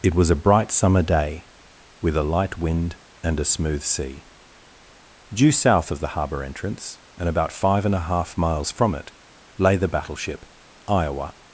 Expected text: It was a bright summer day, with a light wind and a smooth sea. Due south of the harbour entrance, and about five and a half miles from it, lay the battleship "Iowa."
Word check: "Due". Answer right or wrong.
right